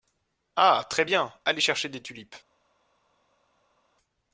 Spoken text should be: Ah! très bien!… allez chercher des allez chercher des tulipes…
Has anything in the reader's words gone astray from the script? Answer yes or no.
yes